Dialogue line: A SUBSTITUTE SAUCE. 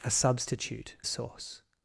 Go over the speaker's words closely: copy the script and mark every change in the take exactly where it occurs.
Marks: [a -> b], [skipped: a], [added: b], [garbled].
A SUBSTITUTE SAUCE.